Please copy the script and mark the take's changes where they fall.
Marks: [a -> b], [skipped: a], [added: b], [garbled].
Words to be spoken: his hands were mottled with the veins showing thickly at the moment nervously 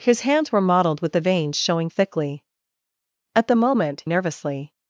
his hands were mottled with the veins showing thickly at the moment nervously